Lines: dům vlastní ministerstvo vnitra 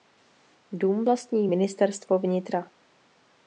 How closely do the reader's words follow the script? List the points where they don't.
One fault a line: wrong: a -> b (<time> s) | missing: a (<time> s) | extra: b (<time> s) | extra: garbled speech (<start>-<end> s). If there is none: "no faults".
no faults